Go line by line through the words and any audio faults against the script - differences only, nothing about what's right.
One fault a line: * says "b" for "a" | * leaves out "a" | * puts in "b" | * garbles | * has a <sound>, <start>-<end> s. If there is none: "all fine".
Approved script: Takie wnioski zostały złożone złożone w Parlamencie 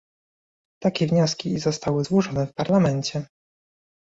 * leaves out "złożone"